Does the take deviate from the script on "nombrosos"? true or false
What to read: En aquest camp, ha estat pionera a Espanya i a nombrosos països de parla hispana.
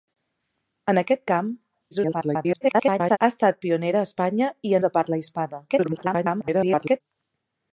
true